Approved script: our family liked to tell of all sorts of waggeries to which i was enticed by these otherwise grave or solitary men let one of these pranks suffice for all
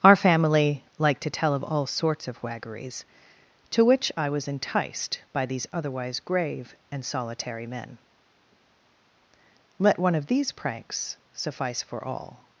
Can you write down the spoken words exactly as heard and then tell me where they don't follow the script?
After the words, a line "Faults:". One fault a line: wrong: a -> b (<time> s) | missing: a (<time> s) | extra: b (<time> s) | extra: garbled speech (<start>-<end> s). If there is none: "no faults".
our family liked to tell of all sorts of waggeries to which i was enticed by these otherwise grave and solitary men let one of these pranks suffice for all
Faults:
wrong: or -> and (6.9 s)